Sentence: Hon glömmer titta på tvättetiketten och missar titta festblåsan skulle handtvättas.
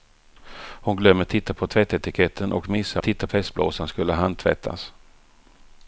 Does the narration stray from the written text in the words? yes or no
no